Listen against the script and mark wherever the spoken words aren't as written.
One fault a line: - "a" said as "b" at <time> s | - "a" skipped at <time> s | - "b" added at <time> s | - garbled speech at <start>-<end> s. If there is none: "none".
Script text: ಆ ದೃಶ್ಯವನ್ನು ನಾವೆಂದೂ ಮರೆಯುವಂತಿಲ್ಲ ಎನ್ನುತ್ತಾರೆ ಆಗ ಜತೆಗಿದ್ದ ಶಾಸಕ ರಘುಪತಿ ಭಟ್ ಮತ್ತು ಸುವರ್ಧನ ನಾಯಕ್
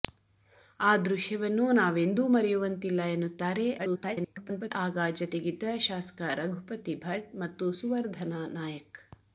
- garbled speech at 3.8-4.7 s